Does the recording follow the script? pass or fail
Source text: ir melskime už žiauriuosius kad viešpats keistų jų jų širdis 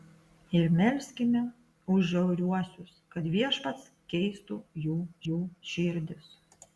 pass